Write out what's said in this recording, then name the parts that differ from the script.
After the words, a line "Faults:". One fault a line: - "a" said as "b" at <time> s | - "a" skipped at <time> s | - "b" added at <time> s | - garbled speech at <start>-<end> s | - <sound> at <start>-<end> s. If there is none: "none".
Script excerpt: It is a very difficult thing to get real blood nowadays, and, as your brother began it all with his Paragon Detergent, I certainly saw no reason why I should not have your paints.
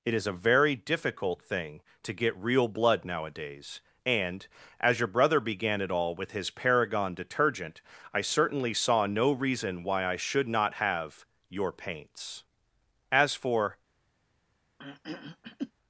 It is a very difficult thing to get real blood nowadays, and, as your brother began it all with his Paragon Detergent, I certainly saw no reason why I should not have your paints. As for
Faults:
- "As for" added at 13.1 s
- throat clearing at 14.8-15.7 s